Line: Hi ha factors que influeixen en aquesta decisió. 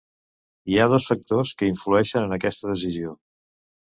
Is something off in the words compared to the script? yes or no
yes